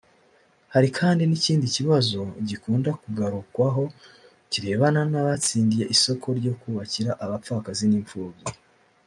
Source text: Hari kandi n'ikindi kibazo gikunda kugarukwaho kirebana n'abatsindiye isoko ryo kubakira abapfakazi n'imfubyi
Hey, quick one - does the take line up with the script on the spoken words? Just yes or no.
yes